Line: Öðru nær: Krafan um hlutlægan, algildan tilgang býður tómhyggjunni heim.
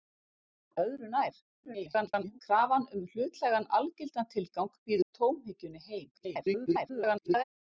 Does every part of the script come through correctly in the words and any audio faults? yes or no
no